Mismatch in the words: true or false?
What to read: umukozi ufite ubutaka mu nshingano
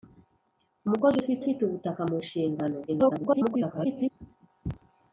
true